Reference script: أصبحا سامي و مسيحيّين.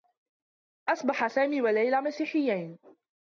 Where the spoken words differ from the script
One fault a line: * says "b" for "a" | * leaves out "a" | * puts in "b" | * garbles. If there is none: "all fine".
* puts in "ليلى"